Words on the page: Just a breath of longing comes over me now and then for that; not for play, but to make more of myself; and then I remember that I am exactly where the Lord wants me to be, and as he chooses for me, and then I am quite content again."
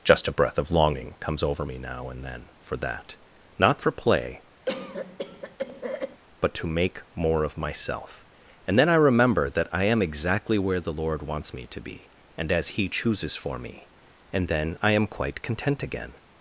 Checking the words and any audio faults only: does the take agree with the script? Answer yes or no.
no